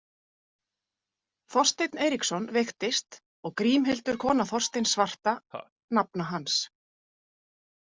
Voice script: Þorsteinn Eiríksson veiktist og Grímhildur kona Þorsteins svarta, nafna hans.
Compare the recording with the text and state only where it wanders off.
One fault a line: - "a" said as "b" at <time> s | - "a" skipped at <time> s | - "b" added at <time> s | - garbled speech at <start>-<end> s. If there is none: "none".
none